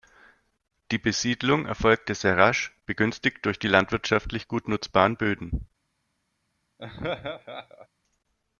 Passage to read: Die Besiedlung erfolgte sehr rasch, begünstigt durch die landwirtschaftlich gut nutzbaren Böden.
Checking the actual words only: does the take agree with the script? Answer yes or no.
yes